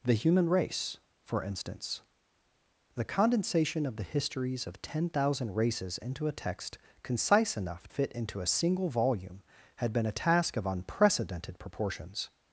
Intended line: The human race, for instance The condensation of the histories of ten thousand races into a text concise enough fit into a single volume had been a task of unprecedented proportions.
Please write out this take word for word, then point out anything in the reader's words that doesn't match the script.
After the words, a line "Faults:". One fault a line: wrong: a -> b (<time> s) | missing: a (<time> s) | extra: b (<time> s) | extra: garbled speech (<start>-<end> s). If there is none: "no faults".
The human race, for instance The condensation of the histories of ten thousand races into a text concise enough fit into a single volume had been a task of unprecedented proportions.
Faults:
no faults